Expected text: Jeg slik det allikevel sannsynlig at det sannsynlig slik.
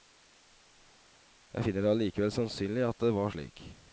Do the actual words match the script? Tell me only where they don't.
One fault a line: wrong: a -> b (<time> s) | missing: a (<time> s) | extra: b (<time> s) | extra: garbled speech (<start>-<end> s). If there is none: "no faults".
wrong: slik -> finner (1.7 s)
wrong: sannsynlig -> var (3.2 s)